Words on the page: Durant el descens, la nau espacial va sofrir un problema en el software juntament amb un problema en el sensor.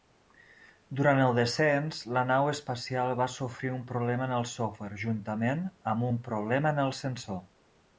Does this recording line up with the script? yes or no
yes